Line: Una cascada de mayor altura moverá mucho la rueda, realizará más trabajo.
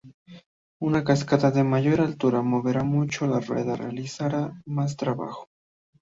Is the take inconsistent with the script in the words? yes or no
no